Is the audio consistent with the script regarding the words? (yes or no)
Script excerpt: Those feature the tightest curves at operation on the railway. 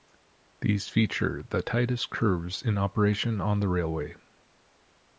no